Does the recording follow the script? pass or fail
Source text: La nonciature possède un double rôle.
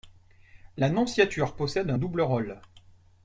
pass